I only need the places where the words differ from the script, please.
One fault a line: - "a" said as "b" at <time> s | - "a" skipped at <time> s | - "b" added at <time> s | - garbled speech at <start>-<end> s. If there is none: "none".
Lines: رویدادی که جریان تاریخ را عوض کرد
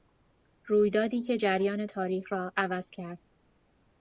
none